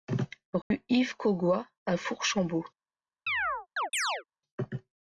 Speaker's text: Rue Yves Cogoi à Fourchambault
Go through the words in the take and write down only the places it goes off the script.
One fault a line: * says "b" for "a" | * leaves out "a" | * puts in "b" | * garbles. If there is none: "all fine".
all fine